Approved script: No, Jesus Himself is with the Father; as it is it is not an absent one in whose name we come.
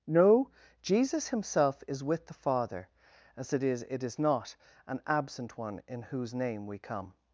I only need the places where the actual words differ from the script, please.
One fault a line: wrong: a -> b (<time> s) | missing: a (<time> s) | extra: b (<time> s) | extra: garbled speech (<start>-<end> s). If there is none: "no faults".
no faults